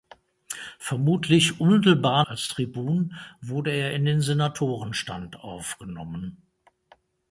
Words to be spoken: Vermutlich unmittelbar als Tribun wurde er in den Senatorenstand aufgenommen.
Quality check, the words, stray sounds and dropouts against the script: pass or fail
pass